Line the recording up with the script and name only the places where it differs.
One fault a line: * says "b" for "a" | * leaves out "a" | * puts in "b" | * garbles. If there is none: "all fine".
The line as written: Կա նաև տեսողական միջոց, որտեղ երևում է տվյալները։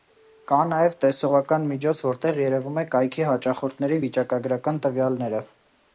* puts in "կայքի հաճախորդների վիճակագրական"